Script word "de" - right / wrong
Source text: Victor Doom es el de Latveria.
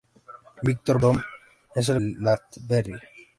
right